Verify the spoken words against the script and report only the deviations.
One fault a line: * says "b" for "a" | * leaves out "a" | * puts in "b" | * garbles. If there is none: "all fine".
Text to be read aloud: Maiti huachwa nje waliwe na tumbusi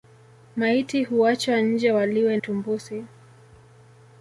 * leaves out "na"